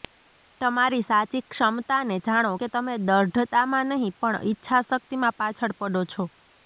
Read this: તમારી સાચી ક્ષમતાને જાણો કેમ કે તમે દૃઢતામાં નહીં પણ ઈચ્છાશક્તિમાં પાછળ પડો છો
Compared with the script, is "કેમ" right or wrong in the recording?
wrong